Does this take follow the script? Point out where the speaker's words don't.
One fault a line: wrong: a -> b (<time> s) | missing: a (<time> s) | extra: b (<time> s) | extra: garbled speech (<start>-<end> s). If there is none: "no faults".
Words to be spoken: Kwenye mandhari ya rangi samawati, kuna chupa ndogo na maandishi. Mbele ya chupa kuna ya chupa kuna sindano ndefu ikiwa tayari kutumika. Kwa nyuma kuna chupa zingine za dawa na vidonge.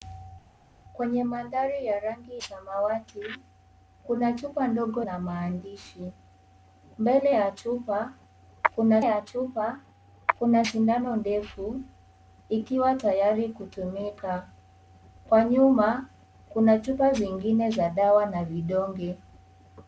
no faults